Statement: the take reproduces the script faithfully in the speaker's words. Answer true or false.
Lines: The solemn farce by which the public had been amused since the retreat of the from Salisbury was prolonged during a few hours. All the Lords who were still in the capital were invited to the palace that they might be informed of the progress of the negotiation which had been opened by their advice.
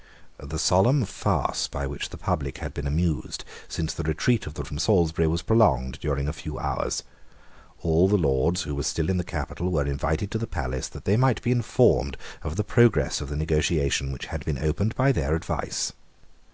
true